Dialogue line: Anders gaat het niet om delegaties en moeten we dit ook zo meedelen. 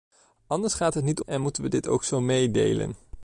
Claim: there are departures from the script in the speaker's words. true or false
true